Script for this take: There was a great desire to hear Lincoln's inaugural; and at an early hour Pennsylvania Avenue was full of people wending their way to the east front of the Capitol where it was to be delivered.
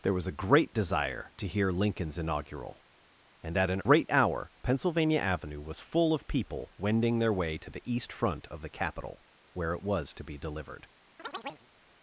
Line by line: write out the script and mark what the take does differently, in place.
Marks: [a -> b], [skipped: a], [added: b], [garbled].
There was a great desire to hear Lincoln's inaugural; and at an [early -> great] hour Pennsylvania Avenue was full of people wending their way to the east front of the Capitol where it was to be delivered.